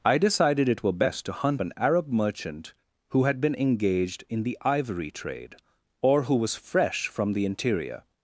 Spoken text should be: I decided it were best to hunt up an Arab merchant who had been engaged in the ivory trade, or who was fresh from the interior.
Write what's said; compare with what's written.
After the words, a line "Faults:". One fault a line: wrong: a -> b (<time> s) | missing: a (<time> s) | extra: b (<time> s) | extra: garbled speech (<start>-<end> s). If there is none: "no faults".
I decided it were best to hunt an Arab merchant who had been engaged in the ivory trade, or who was fresh from the interior.
Faults:
missing: up (1.6 s)